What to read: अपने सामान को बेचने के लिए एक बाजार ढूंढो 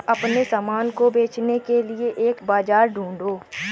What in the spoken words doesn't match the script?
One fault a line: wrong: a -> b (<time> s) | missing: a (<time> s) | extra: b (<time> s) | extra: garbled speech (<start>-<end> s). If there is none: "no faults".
no faults